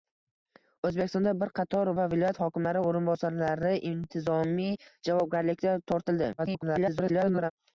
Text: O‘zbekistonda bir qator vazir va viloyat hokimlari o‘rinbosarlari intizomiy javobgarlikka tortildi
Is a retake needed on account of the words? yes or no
yes